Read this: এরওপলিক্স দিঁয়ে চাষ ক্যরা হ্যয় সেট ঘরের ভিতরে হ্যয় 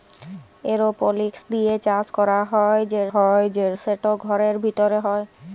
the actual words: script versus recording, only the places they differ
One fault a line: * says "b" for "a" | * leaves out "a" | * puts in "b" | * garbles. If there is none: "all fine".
* puts in "হ্যয়"